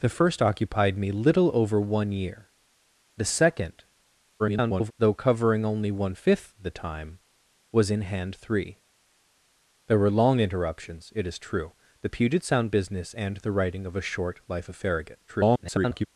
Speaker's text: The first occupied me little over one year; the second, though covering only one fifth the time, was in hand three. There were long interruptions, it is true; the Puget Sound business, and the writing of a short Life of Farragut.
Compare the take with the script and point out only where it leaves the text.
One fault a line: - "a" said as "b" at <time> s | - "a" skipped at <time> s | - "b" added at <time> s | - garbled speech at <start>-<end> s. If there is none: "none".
- garbled speech at 4.4-4.9 s
- garbled speech at 15.3-16.1 s